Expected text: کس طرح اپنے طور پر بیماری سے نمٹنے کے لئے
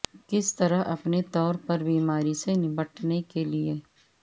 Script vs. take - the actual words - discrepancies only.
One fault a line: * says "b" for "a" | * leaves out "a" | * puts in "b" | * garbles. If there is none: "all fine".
all fine